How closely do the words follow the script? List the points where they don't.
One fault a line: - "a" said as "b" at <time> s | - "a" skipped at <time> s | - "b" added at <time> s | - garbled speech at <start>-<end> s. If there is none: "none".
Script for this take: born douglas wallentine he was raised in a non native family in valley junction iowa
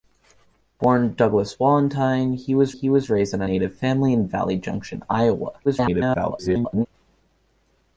- "he was" added at 2.7 s
- "non" skipped at 3.5 s
- garbled speech at 5.6-6.9 s